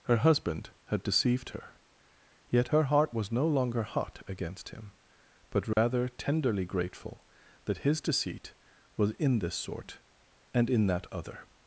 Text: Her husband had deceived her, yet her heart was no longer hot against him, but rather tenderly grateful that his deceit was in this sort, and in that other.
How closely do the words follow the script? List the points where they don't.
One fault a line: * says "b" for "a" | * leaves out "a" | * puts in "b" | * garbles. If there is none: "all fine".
all fine